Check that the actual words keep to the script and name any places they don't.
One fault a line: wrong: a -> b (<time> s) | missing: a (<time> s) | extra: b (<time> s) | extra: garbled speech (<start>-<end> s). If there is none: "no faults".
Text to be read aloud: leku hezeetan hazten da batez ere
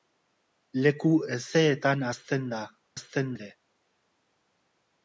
wrong: batez -> hazten (3.0 s)